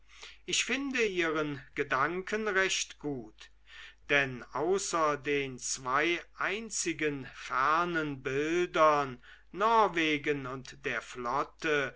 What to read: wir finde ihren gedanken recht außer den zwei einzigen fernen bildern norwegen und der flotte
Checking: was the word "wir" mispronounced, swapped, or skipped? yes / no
yes